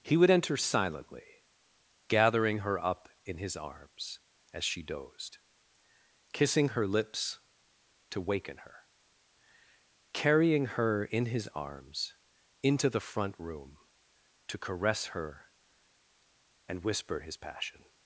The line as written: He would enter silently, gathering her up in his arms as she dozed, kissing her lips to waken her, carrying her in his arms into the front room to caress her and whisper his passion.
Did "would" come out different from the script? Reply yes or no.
no